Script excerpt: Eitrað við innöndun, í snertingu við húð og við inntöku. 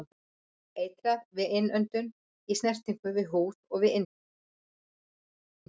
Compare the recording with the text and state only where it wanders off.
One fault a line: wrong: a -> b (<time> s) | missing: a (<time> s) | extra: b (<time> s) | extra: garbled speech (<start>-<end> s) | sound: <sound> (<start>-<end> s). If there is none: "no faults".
no faults